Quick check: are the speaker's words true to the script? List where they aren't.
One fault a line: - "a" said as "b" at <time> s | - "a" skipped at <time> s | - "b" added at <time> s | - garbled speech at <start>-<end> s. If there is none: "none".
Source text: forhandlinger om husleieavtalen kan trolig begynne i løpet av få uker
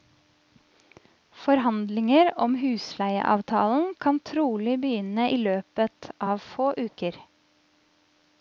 none